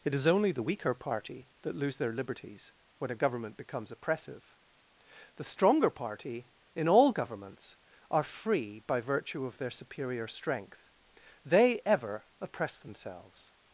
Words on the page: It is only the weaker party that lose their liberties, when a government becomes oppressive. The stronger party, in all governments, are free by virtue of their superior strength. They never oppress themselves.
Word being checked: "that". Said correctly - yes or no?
yes